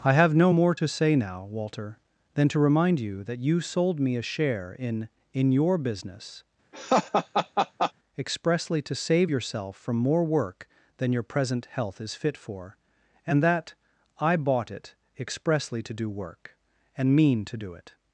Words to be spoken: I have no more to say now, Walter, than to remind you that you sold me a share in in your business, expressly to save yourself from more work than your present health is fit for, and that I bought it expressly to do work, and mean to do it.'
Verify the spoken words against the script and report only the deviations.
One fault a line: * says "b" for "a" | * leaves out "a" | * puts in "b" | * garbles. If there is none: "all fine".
all fine